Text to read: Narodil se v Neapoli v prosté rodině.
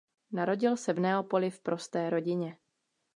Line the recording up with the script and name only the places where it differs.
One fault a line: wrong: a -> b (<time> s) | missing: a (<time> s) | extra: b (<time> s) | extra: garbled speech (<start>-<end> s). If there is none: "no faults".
no faults